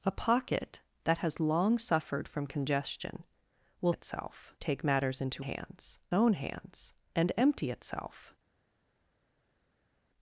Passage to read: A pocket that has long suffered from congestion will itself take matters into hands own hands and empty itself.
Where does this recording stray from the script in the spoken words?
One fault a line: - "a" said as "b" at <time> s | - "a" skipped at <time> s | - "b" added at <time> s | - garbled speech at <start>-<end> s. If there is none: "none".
none